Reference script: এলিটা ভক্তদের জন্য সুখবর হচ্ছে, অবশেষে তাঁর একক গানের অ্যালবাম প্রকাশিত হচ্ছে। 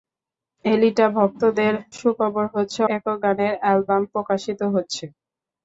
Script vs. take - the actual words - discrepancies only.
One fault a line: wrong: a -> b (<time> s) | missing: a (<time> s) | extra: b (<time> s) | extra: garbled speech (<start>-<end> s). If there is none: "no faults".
missing: জন্য (1.7 s)
missing: অবশেষে তাঁর (2.8 s)